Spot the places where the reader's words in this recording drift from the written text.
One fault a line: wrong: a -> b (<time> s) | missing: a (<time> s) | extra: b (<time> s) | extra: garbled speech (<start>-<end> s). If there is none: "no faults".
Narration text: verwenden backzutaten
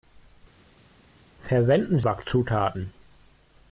no faults